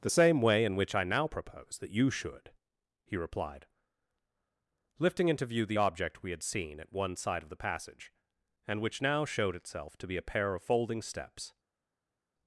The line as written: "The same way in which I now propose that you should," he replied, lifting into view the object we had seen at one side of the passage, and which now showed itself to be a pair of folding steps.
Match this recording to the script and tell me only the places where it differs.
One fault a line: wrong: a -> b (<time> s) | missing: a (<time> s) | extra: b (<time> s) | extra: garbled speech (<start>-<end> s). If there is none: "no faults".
no faults